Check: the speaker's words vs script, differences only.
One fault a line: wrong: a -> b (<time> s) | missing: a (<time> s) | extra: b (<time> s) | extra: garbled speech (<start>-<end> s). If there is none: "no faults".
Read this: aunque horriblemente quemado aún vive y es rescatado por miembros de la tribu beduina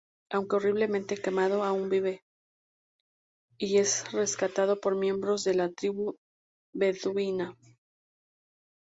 no faults